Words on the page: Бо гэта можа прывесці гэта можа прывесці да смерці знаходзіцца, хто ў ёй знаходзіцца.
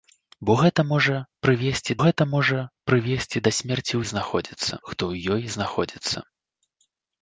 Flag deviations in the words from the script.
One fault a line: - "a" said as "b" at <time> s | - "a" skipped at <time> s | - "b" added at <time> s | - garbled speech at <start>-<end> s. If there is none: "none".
none